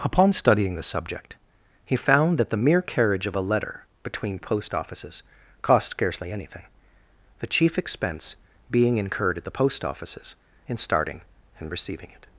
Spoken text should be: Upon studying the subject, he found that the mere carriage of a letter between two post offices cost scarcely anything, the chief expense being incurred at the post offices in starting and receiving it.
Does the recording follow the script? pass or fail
fail